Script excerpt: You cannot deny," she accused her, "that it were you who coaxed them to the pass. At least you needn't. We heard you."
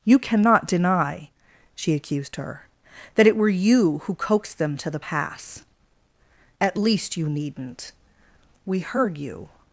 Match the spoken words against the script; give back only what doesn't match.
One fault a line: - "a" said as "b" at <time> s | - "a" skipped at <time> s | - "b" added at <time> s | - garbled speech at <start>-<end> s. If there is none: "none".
none